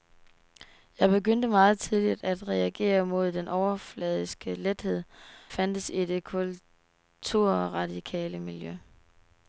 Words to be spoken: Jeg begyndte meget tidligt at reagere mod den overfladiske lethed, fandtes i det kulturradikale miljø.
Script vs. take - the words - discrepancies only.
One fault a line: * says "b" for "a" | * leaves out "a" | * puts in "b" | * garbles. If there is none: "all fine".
all fine